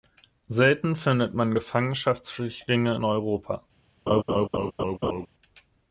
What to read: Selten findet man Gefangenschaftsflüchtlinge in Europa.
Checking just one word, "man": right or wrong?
right